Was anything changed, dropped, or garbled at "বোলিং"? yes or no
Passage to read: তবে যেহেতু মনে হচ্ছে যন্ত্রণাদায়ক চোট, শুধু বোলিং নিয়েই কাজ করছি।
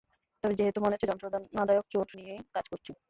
yes